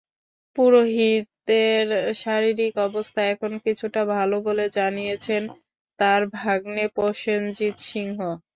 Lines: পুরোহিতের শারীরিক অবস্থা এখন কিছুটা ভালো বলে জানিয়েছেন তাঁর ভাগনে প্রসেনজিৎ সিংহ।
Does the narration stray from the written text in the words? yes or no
no